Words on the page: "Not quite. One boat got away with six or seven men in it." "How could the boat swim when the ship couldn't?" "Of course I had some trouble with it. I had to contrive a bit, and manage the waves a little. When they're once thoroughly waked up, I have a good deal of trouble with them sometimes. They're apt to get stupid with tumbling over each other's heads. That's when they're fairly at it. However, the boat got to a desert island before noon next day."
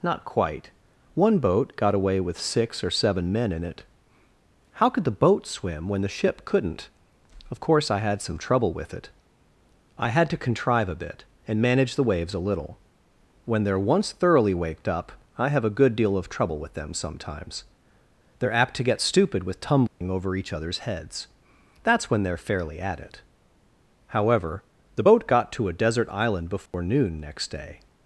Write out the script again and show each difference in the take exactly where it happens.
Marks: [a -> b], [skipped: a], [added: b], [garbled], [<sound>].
"Not quite. One boat got away with six or seven men in it." "How could the boat swim when the ship couldn't?" "Of course I had some trouble with it. I had to contrive a bit, and manage the waves a little. When they're once thoroughly waked up, I have a good deal of trouble with them sometimes. They're apt to get stupid with tumbling [dropout] over each other's heads. That's when they're fairly at it. However, the boat got to a desert island before [dropout] noon next day."